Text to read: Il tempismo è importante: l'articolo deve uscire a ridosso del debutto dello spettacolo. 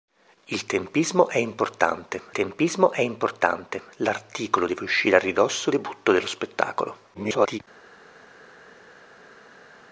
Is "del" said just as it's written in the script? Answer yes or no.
no